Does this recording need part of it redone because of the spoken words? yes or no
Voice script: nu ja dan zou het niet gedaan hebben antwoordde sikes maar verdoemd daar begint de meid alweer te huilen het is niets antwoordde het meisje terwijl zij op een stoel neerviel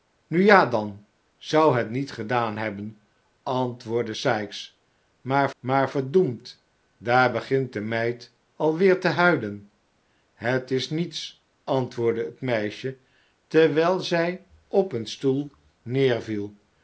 yes